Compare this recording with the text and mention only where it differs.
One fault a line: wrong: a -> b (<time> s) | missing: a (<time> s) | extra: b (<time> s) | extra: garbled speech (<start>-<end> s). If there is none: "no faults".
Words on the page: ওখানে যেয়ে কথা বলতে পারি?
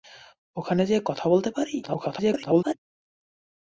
extra: garbled speech (1.8-2.7 s)